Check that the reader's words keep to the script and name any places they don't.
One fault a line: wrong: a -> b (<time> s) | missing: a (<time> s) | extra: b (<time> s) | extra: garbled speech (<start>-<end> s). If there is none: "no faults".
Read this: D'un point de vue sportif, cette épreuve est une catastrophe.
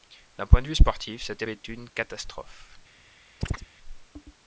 missing: épreuve (1.4 s)